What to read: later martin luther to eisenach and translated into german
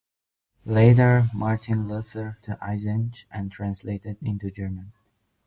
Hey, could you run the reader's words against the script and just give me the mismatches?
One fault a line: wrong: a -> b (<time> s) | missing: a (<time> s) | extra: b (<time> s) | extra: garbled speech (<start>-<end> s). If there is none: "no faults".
no faults